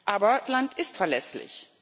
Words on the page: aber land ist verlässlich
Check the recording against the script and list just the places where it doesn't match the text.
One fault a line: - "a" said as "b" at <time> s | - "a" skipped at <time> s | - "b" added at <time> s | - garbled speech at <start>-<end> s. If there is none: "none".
none